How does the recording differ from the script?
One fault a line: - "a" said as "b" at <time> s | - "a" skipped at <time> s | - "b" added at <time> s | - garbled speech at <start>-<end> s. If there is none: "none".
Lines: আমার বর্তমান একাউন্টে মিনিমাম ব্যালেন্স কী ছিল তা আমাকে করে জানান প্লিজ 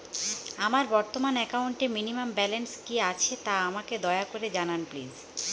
- "ছিল" said as "আছে" at 3.1 s
- "দয়া" added at 4.0 s